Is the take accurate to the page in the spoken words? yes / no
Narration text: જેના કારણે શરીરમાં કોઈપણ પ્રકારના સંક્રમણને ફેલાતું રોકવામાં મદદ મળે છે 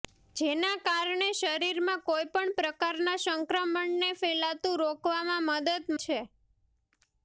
no